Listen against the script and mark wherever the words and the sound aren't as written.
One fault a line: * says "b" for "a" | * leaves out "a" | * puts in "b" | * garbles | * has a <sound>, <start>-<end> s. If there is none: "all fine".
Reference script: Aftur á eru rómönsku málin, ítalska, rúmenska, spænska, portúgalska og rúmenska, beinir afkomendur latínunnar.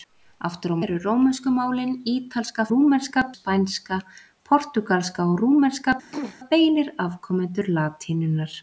* has a throat clearing, 6.1-6.4 s